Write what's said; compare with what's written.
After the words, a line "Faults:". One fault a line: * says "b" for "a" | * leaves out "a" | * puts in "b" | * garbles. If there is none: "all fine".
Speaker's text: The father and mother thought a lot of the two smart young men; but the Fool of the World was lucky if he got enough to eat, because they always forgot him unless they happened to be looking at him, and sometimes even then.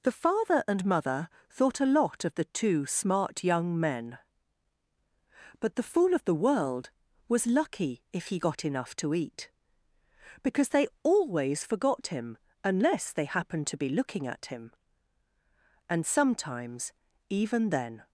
The father and mother thought a lot of the two smart young men; but the Fool of the World was lucky if he got enough to eat, because they always forgot him unless they happened to be looking at him, and sometimes even then.
Faults:
all fine